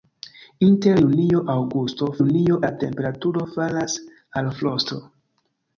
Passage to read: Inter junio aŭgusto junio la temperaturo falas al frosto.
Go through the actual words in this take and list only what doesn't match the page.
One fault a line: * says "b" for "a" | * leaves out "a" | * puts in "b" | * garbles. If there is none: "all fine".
all fine